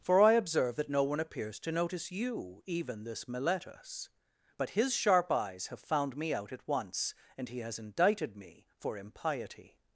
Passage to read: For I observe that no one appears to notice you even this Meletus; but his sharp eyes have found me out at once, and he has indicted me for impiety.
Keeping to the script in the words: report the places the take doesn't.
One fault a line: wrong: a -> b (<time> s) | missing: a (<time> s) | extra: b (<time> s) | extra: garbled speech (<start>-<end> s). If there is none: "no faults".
no faults